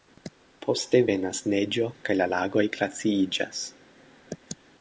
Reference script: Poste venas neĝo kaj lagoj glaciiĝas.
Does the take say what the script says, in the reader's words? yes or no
no